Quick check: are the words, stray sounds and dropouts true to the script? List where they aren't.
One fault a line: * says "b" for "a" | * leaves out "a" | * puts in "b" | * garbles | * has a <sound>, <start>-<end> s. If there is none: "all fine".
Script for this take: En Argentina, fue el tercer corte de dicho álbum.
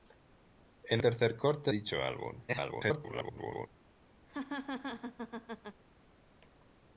* leaves out "Argentina fue"
* leaves out "de"
* garbles
* has a laugh, 4.3-5.8 s